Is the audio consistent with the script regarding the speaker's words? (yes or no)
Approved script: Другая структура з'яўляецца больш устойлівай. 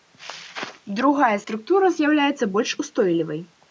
yes